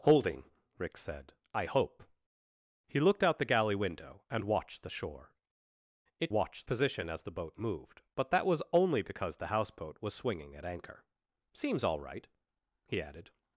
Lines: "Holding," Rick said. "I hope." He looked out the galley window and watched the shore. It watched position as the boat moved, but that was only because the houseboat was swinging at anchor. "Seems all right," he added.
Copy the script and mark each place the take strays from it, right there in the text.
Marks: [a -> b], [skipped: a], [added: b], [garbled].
"Holding," Rick said. "I hope." He looked out the galley window and watched the shore. It watched position as the boat moved, but that was only because the houseboat was swinging at anchor. "Seems all right," he added.